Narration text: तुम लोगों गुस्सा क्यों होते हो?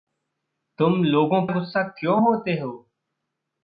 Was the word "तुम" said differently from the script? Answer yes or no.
no